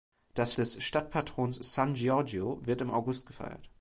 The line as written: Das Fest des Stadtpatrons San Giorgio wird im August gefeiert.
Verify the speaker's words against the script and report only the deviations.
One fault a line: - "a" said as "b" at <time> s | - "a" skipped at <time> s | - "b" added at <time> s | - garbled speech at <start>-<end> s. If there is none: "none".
- "Fest" skipped at 0.5 s